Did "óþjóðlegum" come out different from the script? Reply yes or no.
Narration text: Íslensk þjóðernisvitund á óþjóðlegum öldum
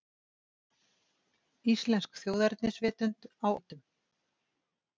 yes